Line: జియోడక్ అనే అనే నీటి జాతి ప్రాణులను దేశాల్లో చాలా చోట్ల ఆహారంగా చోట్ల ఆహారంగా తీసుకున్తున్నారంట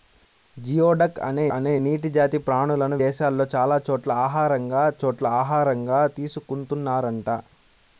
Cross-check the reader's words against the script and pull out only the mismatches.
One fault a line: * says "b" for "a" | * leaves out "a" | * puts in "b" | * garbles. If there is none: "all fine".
all fine